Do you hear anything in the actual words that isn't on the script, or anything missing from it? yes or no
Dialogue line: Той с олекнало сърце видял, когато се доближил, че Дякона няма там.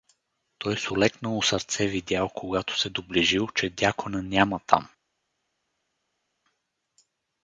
no